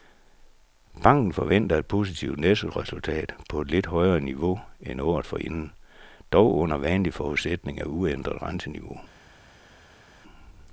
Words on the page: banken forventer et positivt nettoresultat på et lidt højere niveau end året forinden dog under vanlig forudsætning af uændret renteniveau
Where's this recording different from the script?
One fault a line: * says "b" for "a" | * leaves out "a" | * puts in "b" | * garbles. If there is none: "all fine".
all fine